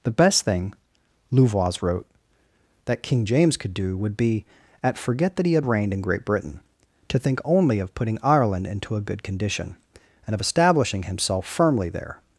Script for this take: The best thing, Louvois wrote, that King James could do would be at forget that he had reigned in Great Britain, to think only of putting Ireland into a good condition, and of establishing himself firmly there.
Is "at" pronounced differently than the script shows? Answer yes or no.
no